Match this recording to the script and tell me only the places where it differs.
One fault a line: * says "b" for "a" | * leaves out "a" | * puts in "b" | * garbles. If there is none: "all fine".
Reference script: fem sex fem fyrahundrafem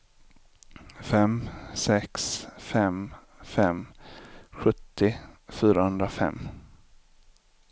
* puts in "fem sjuttio"